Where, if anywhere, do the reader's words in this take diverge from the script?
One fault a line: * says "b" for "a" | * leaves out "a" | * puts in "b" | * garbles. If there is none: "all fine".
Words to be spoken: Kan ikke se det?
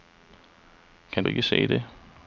all fine